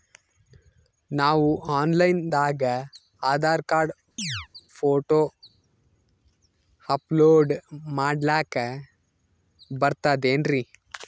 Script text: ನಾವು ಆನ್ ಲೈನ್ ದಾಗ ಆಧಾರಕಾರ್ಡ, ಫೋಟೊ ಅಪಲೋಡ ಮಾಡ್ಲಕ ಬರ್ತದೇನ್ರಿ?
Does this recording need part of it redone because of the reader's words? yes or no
no